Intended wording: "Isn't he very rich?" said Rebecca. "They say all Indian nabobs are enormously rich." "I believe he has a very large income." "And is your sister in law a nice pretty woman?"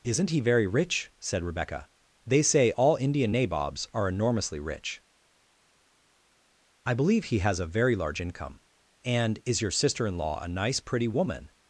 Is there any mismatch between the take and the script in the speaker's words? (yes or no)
no